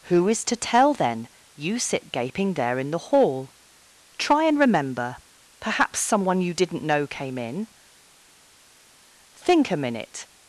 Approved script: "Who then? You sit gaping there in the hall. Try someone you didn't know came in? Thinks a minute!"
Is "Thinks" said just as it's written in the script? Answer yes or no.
no